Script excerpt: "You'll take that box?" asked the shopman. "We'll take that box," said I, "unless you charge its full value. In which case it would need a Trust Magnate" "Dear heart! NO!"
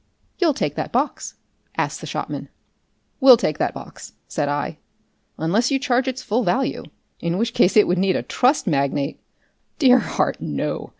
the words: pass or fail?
pass